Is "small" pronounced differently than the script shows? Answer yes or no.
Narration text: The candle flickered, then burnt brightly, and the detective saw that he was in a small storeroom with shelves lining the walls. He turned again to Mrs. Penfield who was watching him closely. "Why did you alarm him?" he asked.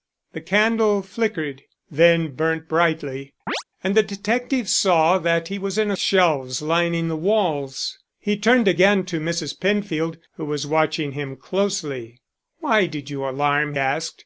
yes